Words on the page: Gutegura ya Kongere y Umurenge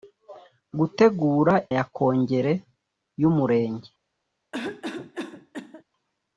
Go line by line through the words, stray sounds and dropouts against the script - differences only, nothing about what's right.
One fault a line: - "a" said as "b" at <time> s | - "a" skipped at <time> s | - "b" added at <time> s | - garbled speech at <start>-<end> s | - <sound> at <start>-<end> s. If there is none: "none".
- cough at 4.5-5.8 s